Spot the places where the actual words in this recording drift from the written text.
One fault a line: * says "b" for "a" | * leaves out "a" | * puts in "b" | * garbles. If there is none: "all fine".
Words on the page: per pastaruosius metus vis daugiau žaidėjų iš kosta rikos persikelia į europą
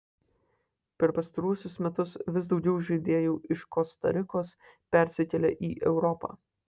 all fine